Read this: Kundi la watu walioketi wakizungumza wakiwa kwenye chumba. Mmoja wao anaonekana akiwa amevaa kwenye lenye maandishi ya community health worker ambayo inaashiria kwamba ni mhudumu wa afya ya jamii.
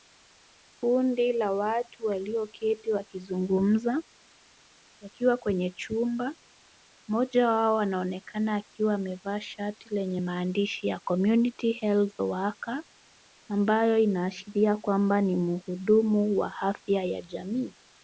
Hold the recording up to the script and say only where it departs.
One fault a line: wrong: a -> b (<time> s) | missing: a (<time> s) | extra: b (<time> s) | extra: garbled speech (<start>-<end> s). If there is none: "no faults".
wrong: kwenye -> shati (9.4 s)